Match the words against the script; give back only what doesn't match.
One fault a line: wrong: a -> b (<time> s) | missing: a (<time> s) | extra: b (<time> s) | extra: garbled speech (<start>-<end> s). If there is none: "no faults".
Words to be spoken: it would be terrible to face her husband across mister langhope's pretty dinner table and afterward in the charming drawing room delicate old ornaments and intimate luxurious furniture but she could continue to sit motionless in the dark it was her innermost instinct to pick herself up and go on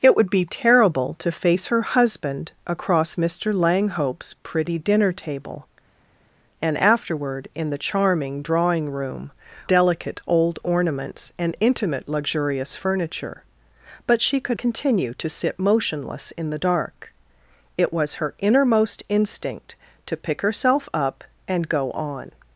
no faults